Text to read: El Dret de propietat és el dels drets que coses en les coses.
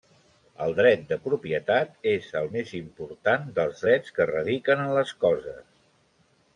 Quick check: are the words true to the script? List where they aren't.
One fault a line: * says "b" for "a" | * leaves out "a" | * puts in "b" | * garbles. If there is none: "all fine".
* puts in "més important"
* says "radiquen" for "coses"